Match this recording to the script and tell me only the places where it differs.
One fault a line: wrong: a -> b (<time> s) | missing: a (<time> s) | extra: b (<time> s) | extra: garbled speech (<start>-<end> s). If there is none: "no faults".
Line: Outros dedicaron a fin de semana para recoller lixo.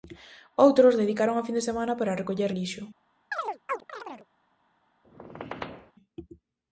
no faults